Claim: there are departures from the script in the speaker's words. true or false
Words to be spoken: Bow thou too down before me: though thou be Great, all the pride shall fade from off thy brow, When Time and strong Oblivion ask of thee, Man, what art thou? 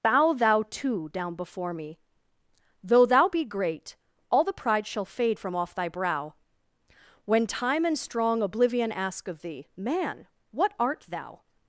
false